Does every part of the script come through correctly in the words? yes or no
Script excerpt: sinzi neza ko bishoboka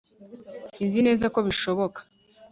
yes